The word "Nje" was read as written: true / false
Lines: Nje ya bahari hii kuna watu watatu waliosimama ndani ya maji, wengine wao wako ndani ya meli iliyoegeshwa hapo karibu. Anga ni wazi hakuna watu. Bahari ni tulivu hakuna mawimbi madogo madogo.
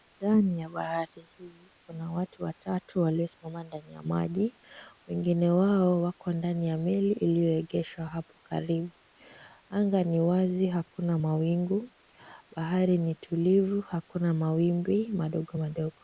false